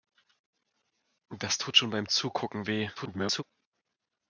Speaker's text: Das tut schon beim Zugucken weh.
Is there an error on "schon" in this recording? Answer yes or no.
no